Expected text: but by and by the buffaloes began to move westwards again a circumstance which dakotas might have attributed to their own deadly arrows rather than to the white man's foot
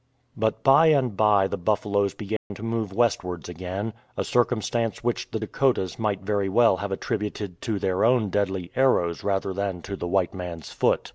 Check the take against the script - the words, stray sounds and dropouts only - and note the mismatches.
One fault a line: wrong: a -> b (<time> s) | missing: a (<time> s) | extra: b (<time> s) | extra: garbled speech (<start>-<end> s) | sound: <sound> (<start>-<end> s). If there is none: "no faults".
sound: dropout (2.4-2.5 s)
extra: the (5.3 s)
extra: very well (6.2 s)